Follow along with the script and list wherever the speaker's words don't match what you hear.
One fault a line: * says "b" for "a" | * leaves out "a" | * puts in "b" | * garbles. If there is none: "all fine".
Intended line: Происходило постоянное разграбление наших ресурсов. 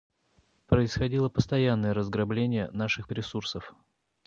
all fine